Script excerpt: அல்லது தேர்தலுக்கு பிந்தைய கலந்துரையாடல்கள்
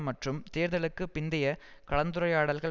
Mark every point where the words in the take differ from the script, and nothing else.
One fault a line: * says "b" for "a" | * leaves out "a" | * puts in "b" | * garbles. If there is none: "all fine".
* says "மற்றும்" for "அல்லது"